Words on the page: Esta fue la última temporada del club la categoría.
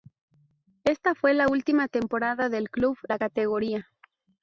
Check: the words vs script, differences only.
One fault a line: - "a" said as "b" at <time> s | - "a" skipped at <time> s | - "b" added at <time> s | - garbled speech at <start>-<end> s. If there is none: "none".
none